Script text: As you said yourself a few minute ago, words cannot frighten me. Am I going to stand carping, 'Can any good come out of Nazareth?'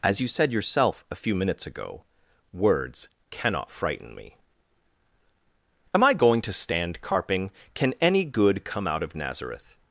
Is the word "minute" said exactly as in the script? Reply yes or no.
no